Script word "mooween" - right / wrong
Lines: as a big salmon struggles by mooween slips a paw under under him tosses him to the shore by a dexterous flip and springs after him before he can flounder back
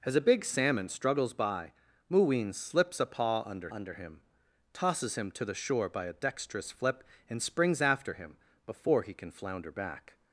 right